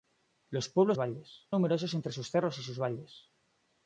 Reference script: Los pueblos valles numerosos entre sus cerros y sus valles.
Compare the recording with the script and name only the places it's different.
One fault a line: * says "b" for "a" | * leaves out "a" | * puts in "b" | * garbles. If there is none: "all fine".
all fine